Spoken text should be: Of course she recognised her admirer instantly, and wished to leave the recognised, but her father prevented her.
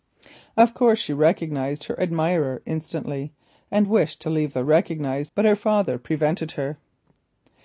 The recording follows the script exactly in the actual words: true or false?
true